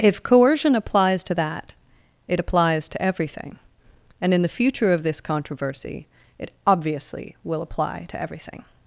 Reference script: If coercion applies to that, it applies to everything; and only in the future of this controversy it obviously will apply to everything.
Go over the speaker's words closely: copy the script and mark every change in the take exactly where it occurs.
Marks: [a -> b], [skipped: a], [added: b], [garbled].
If coercion applies to that, it applies to everything; and [skipped: only] in the future of this controversy it obviously will apply to everything.